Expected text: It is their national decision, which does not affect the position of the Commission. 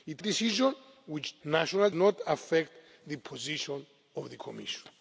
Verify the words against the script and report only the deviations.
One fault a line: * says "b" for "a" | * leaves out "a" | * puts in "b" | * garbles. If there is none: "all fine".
* leaves out "is their national"
* says "national" for "does"